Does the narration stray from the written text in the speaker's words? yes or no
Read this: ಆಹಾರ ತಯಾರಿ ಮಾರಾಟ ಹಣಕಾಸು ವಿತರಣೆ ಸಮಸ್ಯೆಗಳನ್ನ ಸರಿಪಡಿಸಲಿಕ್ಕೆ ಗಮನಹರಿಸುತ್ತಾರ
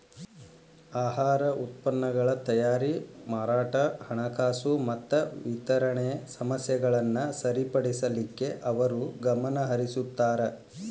yes